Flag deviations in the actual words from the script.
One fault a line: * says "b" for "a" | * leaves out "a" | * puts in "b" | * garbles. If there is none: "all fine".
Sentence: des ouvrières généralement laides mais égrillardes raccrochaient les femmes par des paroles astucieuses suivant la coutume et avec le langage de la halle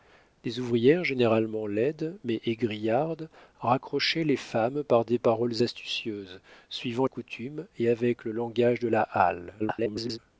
* leaves out "la"
* garbles